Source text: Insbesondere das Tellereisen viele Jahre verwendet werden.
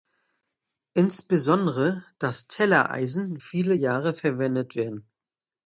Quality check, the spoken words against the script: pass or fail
pass